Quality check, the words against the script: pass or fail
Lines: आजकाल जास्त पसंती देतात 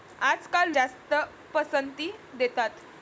pass